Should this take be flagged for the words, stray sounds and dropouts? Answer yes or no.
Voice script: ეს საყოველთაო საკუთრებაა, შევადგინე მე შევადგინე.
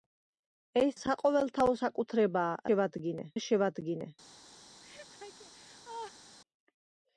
yes